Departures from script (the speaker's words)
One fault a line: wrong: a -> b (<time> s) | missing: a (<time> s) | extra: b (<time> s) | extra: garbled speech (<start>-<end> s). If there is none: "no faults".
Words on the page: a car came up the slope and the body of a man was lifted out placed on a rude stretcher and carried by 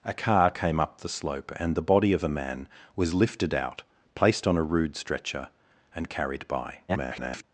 extra: garbled speech (6.9-7.4 s)